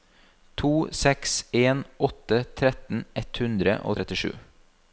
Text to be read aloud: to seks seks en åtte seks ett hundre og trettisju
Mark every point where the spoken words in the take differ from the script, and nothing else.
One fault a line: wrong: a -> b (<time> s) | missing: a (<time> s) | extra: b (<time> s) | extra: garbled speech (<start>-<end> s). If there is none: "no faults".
missing: seks (1.4 s)
wrong: seks -> tretten (2.6 s)